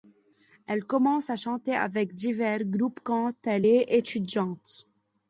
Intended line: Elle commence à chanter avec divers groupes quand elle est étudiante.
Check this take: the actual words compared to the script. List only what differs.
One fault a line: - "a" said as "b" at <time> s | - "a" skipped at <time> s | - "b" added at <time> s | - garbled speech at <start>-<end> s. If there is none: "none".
none